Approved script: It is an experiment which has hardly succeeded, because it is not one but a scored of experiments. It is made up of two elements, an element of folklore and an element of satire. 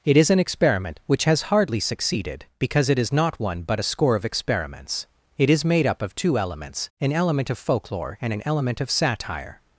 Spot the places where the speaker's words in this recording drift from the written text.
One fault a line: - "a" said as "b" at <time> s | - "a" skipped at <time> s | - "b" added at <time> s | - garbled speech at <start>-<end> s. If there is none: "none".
- "scored" said as "score" at 3.8 s